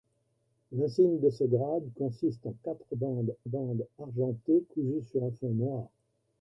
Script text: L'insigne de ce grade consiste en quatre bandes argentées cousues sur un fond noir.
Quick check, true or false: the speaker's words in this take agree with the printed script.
false